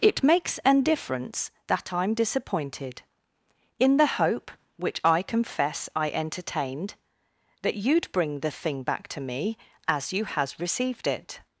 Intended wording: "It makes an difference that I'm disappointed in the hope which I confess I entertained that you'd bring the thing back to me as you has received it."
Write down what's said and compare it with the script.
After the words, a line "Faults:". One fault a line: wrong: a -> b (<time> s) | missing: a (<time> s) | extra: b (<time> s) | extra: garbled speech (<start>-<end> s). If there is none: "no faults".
"It makes an difference that I'm disappointed in the hope which I confess I entertained that you'd bring the thing back to me as you has received it."
Faults:
no faults